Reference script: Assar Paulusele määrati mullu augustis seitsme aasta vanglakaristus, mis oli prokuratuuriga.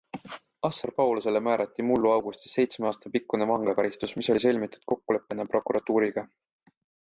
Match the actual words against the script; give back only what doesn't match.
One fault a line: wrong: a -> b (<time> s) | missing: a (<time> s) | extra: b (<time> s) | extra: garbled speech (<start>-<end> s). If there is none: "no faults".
extra: pikkune (3.2 s)
extra: sõlmitud kokkuleppena (4.5 s)